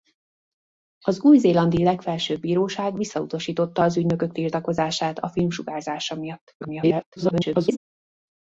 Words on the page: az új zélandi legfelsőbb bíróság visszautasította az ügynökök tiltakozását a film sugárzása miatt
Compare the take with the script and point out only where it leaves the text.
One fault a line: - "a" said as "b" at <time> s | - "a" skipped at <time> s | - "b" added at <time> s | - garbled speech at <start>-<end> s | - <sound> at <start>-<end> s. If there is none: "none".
- garbled speech at 6.6-7.8 s